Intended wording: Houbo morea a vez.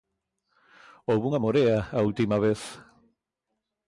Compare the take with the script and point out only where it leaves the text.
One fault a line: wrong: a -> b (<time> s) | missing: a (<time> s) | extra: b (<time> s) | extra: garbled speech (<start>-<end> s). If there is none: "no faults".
extra: unha (1.3 s)
extra: última (2.1 s)